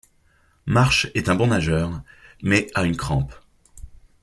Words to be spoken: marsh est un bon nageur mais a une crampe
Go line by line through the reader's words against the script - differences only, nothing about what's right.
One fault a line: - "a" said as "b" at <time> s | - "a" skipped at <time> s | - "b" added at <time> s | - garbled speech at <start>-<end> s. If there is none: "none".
none